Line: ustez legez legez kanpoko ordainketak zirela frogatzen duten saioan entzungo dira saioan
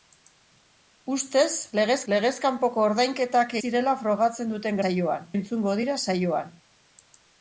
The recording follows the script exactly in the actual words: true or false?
true